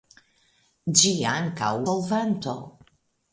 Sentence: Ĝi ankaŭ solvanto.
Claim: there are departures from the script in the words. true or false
false